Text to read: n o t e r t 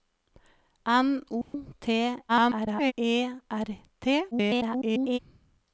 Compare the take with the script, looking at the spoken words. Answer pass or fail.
fail